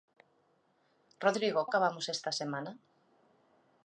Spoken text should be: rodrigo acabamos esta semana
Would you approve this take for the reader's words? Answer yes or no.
yes